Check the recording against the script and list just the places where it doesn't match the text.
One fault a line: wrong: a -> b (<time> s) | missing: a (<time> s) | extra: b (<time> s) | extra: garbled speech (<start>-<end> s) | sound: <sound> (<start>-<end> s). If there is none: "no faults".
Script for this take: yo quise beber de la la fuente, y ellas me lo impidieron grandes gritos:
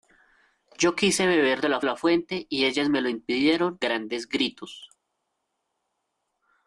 no faults